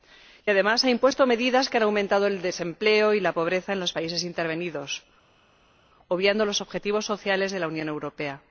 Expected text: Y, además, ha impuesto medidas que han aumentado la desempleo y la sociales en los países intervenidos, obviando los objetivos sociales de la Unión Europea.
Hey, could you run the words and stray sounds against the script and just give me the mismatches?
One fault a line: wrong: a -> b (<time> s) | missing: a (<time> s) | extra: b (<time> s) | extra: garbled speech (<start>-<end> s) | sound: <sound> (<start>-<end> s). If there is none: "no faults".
wrong: la -> el (2.3 s)
wrong: sociales -> pobreza (3.3 s)